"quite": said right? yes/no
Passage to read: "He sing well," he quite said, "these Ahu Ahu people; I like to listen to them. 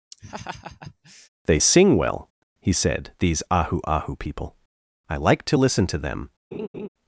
no